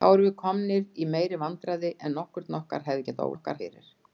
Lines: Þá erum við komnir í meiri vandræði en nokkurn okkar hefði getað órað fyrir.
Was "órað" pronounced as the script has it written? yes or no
no